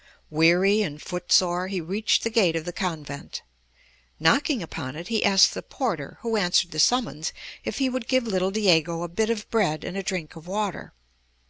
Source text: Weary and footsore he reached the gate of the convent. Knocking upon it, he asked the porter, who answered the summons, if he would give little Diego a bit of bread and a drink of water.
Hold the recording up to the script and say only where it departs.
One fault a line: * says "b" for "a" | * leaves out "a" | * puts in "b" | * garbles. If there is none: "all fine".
all fine